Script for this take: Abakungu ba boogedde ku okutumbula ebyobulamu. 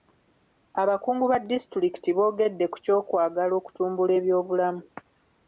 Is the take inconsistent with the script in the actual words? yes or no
yes